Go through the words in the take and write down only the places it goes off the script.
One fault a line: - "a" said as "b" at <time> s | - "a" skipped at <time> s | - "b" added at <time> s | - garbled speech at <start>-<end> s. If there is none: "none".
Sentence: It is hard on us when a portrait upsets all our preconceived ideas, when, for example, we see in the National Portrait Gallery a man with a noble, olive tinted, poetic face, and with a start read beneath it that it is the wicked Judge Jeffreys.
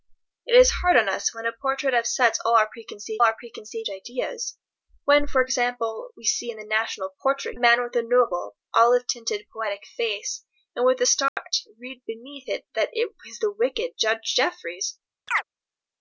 - "our preconceived" added at 3.2 s
- "Gallery a" skipped at 7.6 s